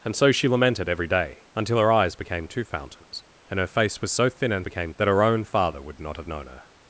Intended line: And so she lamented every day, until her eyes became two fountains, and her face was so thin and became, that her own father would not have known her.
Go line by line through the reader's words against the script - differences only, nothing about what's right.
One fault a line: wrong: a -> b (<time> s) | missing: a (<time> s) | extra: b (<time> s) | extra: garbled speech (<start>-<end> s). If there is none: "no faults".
no faults